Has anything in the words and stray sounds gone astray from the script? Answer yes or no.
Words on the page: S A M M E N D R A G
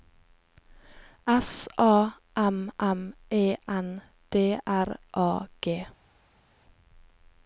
no